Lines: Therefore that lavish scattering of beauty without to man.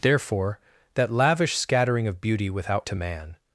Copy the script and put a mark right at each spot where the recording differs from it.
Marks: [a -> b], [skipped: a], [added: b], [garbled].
Therefore that lavish scattering of beauty without to man.